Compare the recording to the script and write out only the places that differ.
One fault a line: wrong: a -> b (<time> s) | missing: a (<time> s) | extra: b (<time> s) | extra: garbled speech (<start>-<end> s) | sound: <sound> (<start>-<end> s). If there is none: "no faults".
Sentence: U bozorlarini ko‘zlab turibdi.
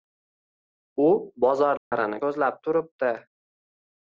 sound: dropout (1.8-1.9 s)